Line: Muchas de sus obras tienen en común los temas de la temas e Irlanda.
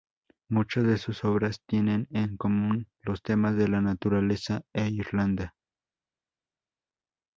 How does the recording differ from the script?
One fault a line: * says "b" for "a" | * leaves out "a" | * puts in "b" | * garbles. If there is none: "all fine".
* says "naturaleza" for "temas"